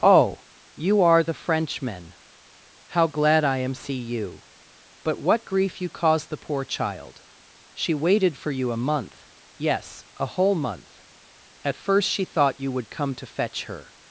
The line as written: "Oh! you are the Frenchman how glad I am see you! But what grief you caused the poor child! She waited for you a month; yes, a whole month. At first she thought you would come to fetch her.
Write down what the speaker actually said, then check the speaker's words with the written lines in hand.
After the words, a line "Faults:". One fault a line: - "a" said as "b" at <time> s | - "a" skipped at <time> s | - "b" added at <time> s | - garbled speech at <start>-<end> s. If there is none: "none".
"Oh! you are the Frenchman how glad I am see you! But what grief you caused the poor child! She waited for you a month; yes, a whole month. At first she thought you would come to fetch her.
Faults:
none